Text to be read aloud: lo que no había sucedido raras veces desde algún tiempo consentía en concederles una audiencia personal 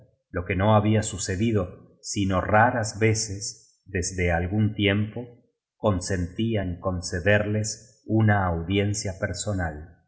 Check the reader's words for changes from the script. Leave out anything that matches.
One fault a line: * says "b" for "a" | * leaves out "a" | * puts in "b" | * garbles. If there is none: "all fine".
* puts in "sino"